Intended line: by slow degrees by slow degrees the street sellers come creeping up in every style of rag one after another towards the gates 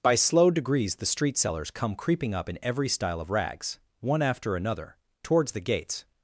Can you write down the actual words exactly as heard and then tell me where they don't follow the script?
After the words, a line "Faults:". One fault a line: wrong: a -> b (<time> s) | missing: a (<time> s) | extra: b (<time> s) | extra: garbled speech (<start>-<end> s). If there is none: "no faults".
by slow degrees the street sellers come creeping up in every style of rags one after another towards the gates
Faults:
missing: by slow degrees (0.9 s)
wrong: rag -> rags (3.3 s)